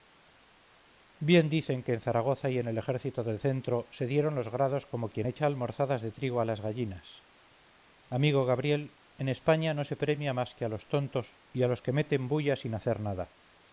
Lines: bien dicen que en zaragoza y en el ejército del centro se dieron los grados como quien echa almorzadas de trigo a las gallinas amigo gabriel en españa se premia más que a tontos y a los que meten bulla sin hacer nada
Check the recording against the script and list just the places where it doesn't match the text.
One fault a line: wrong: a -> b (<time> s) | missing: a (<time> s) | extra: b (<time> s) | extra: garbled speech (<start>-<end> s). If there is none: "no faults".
extra: no (9.7 s)
extra: los (10.7 s)